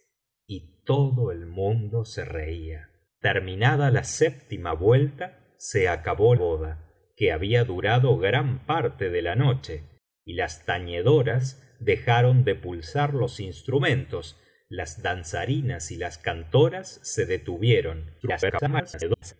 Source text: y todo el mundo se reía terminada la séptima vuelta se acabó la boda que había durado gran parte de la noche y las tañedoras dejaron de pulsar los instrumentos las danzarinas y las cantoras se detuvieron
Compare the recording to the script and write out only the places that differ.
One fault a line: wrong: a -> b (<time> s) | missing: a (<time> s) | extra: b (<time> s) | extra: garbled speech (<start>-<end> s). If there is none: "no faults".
missing: la (6.3 s)
extra: garbled speech (18.2-19.3 s)